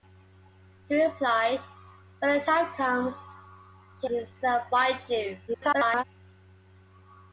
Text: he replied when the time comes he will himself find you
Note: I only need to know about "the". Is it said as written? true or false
true